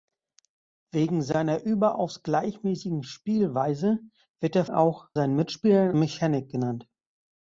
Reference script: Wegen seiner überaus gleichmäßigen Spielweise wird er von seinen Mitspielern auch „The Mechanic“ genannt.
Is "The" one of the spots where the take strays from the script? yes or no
yes